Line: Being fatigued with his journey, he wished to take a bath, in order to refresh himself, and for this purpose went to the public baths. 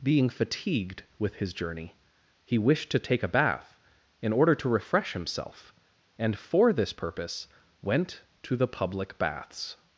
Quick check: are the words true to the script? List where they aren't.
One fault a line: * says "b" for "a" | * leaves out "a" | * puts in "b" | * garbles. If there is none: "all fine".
all fine